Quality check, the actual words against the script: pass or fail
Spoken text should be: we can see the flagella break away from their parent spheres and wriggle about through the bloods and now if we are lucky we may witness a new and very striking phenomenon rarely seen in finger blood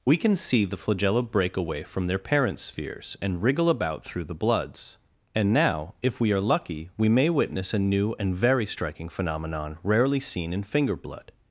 pass